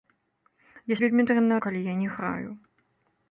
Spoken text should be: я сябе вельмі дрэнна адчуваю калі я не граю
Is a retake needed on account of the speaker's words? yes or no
yes